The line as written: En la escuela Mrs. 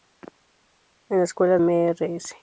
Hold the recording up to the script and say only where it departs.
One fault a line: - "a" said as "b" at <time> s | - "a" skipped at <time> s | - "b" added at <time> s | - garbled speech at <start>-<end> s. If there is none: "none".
none